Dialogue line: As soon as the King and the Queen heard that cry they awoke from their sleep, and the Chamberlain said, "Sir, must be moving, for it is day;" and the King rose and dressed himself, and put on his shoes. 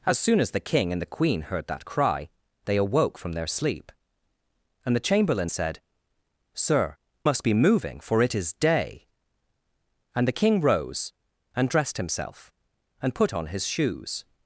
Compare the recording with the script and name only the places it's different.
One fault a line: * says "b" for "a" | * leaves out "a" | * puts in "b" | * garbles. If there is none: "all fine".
all fine